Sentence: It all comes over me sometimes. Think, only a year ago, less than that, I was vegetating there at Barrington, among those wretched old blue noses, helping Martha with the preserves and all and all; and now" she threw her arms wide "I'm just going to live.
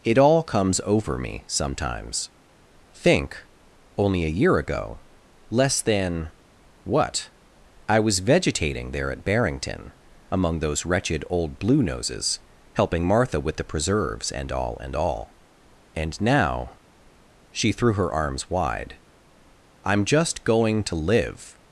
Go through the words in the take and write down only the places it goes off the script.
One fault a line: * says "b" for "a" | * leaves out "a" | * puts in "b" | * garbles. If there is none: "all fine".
* says "what" for "that"